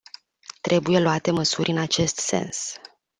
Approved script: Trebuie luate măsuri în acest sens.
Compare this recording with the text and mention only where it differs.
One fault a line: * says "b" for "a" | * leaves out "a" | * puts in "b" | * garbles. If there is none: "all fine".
all fine